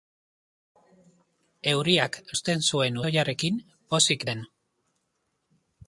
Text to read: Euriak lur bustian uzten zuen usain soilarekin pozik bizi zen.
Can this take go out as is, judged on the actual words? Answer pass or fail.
fail